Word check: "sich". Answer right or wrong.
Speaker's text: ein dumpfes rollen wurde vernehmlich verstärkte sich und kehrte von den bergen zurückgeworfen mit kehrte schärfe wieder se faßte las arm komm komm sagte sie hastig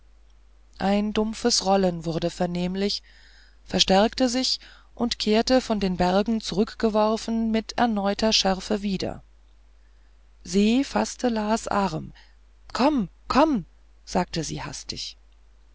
right